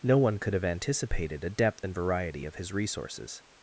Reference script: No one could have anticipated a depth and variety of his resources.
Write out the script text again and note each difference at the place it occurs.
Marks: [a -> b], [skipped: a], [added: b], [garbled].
No one could have anticipated a depth and variety of his resources.